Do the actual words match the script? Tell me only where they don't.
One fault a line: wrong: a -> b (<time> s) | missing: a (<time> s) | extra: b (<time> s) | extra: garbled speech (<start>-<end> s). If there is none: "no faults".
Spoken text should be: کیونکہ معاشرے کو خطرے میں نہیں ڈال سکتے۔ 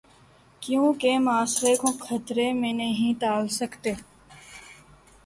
no faults